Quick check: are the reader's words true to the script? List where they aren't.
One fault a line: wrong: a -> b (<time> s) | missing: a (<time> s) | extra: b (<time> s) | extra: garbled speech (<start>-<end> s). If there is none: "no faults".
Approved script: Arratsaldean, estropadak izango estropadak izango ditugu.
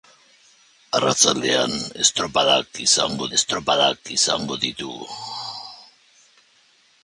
no faults